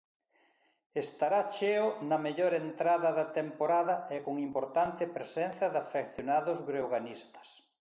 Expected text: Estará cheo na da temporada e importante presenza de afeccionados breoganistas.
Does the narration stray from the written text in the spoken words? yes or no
yes